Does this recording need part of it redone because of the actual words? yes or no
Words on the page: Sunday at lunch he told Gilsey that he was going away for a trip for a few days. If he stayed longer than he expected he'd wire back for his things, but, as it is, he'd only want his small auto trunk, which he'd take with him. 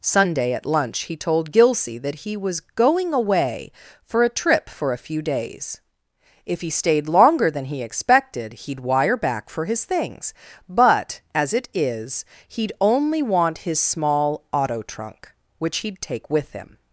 no